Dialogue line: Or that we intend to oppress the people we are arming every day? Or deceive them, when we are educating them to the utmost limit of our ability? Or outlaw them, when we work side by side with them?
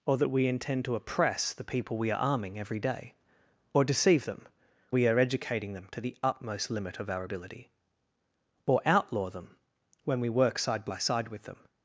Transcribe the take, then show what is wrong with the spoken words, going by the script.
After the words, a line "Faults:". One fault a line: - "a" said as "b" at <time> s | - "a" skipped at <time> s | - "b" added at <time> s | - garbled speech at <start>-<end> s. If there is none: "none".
Or that we intend to oppress the people we are arming every day? Or deceive them, we are educating them to the utmost limit of our ability? Or outlaw them, when we work side by side with them?
Faults:
- "when" skipped at 4.5 s